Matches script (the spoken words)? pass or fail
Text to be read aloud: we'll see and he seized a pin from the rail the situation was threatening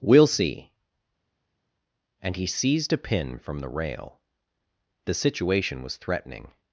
pass